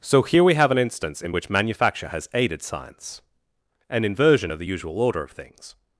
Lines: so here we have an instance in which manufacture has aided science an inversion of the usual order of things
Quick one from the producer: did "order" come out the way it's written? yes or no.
yes